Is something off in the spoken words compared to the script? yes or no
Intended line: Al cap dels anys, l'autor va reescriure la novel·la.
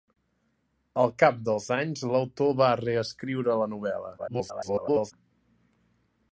yes